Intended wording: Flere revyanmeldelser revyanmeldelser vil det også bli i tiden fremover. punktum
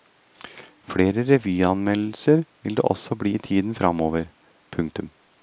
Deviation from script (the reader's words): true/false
true